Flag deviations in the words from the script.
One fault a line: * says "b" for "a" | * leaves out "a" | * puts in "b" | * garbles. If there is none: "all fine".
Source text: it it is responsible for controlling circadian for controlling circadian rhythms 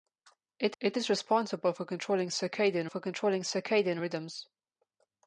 all fine